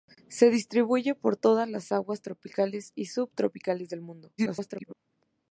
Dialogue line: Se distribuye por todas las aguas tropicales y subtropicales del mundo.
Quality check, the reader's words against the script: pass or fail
fail